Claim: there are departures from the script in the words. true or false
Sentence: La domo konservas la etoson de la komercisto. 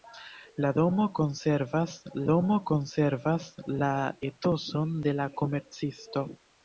true